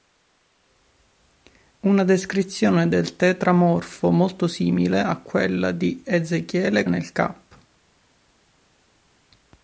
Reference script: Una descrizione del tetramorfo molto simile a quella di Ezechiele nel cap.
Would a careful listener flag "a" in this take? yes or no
no